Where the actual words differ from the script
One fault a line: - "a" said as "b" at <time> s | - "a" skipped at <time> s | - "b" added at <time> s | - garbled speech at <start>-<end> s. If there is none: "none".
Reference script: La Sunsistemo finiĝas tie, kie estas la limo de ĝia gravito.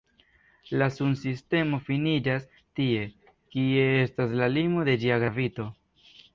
none